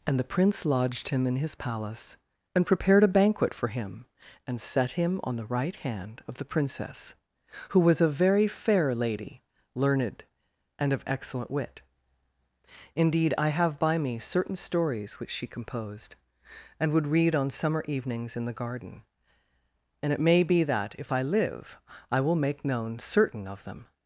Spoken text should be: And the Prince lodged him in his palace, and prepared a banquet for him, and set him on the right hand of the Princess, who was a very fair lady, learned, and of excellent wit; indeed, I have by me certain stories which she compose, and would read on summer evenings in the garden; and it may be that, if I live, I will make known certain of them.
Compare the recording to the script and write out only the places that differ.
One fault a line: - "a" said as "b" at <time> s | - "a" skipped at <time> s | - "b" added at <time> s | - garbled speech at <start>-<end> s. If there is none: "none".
- "compose" said as "composed" at 15.5 s